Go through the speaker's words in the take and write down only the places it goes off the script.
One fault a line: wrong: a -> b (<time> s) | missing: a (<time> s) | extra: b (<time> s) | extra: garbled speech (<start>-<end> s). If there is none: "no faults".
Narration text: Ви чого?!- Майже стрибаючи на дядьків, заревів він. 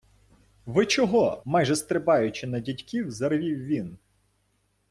no faults